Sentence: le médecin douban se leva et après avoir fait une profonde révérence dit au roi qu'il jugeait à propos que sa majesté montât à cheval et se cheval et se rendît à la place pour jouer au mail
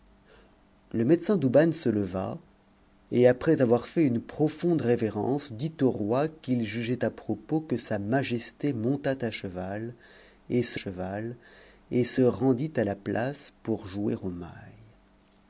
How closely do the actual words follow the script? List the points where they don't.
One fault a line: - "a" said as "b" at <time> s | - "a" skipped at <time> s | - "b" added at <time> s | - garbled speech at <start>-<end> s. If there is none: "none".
none